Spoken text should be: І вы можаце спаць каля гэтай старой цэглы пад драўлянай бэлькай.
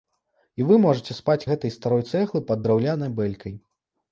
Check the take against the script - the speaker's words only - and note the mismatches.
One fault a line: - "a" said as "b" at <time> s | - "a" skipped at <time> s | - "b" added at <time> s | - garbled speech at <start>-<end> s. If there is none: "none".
- "каля" skipped at 1.5 s